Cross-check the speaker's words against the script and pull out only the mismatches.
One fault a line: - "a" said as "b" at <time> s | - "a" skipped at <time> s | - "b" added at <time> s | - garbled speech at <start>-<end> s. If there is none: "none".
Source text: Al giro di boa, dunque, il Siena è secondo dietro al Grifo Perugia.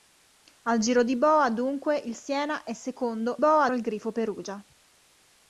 - "dietro" said as "boa" at 3.4 s